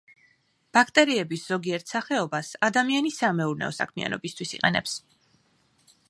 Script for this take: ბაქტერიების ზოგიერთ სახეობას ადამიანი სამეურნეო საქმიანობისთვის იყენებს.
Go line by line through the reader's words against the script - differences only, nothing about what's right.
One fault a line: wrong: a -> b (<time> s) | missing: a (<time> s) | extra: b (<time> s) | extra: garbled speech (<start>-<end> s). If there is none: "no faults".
no faults